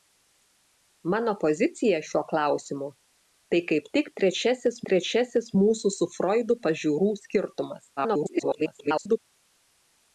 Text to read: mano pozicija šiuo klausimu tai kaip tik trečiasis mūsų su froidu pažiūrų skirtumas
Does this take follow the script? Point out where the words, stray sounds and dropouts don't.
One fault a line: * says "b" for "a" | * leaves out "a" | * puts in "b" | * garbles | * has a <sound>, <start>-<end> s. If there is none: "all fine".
* puts in "trečiasis"
* garbles